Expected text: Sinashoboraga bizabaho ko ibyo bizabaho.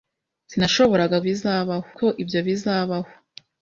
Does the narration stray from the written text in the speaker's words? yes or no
no